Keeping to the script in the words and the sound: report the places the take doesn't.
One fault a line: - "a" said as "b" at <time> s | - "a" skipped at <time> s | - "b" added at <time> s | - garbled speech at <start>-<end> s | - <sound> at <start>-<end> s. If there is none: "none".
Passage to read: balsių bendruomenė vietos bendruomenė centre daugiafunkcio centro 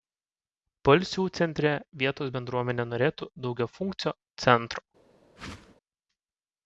- "bendruomenė" said as "centre" at 1.4 s
- "centre" said as "norėtų" at 2.9 s
- whoosh at 5.4-5.8 s